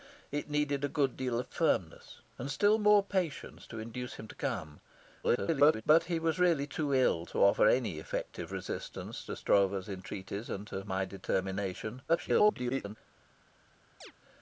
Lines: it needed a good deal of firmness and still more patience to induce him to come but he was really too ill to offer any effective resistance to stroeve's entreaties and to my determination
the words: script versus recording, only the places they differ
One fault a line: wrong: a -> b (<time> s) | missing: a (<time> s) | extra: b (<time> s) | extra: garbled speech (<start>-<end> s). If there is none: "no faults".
extra: garbled speech (5.2-5.8 s)
extra: garbled speech (12.1-13.0 s)